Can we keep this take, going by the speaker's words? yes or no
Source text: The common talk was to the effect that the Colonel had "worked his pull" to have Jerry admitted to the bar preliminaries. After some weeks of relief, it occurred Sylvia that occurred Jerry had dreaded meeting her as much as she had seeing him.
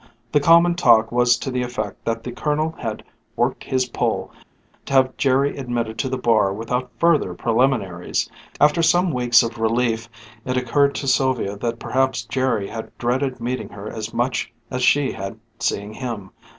no